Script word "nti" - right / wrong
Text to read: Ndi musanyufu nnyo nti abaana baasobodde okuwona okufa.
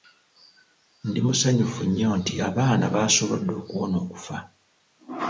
right